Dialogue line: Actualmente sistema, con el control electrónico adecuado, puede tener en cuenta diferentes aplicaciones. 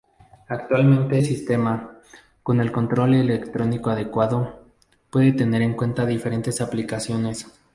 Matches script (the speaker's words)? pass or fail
pass